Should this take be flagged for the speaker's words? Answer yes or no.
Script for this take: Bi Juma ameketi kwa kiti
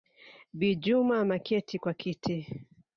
no